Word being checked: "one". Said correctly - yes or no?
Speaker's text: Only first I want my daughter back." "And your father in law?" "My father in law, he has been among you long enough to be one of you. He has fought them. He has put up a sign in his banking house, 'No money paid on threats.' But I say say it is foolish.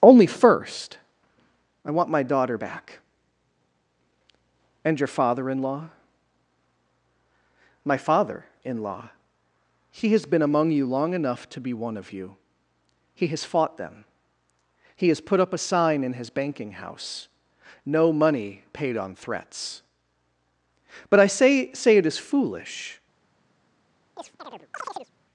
yes